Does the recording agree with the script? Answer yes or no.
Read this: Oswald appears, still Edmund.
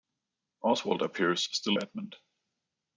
yes